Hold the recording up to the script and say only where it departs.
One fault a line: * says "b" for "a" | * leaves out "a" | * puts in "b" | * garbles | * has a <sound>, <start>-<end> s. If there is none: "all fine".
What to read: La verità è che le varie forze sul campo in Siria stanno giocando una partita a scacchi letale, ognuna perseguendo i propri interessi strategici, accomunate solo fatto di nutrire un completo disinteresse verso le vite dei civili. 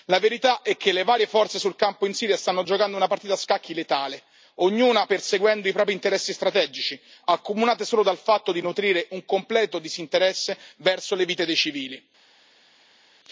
* puts in "dal"